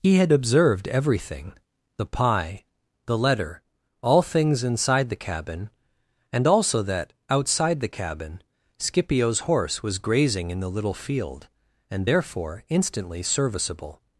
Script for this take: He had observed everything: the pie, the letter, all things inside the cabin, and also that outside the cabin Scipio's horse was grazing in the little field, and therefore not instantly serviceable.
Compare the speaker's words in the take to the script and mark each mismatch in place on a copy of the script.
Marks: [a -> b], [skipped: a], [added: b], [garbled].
He had observed everything: the pie, the letter, all things inside the cabin, and also that outside the cabin Scipio's horse was grazing in the little field, and therefore [skipped: not] instantly serviceable.